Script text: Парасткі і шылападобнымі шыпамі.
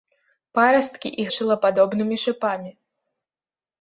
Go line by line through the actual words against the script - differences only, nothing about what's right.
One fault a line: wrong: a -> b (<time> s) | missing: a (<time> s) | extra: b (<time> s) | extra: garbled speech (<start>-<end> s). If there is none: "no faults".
no faults